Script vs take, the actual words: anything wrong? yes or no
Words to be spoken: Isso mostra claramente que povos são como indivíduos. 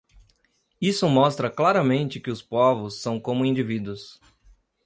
yes